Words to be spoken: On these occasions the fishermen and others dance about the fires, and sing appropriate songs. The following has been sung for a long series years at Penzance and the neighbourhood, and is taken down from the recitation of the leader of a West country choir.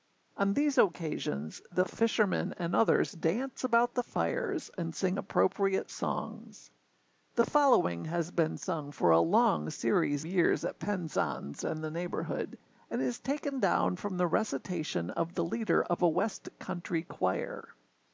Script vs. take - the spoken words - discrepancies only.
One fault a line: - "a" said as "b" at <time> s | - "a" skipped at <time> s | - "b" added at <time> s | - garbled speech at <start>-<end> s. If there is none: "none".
none